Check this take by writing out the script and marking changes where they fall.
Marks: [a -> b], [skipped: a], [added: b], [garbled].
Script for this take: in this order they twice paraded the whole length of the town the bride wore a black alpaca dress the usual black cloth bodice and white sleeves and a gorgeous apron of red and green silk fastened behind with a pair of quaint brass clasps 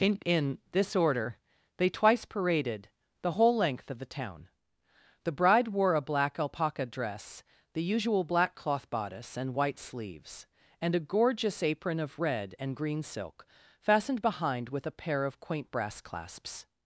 in [added: in] this order they twice paraded the whole length of the town the bride wore a black alpaca dress the usual black cloth bodice and white sleeves and a gorgeous apron of red and green silk fastened behind with a pair of quaint brass clasps